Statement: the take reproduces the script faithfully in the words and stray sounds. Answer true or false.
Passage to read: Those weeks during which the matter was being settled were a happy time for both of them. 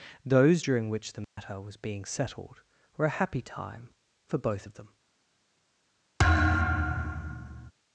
false